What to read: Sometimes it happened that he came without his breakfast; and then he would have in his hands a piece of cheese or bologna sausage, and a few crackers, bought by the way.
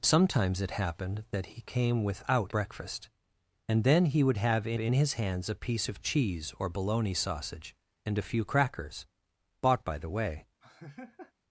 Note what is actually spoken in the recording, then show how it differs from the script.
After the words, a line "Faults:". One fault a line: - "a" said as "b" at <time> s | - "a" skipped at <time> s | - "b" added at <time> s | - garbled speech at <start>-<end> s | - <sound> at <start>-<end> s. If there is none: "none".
Sometimes it happened that he came without breakfast; and then he would have in in his hands a piece of cheese or bologna sausage, and a few crackers, bought by the way.
Faults:
- "his" skipped at 2.5 s
- "in" added at 4.8 s
- laugh at 10.6-11.3 s